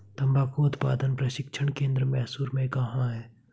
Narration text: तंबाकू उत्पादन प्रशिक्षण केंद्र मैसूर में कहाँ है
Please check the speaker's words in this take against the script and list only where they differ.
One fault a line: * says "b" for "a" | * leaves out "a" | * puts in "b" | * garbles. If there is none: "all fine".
all fine